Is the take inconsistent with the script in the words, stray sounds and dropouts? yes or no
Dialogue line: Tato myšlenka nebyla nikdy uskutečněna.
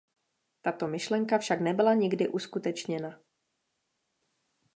yes